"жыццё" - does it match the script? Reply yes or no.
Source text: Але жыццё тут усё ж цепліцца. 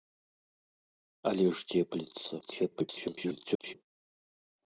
no